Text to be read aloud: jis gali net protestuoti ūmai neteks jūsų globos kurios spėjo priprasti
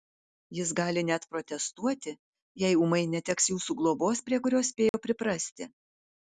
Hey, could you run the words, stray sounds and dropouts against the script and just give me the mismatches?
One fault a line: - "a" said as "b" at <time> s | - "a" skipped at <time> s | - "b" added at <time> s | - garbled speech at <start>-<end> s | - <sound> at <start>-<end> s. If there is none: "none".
- "jei" added at 2.6 s
- "prie" added at 4.3 s
- dropout at 4.9-4.9 s